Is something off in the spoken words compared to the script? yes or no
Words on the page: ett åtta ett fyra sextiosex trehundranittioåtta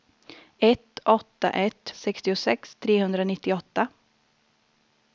yes